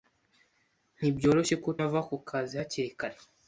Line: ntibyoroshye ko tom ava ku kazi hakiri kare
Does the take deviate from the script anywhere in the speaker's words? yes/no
yes